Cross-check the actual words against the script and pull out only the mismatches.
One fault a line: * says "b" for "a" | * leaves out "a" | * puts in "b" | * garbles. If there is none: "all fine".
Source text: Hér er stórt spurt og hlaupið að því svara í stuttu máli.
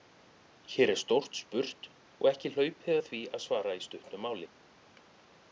* puts in "ekki"
* puts in "að"